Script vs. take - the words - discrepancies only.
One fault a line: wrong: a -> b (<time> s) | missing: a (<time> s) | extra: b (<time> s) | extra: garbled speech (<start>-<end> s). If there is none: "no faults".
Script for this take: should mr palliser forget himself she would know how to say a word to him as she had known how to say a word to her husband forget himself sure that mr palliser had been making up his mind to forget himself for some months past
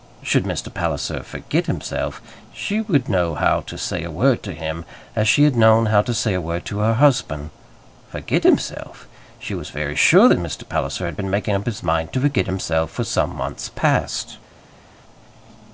extra: she was very (9.4 s)